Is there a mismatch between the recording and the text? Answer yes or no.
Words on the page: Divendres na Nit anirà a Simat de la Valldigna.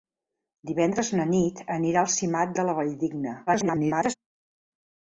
yes